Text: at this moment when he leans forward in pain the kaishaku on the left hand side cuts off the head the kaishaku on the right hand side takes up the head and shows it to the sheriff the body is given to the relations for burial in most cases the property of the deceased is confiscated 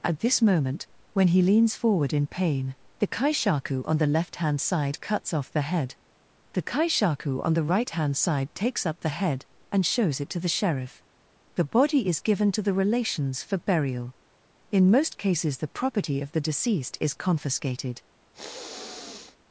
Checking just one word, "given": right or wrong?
right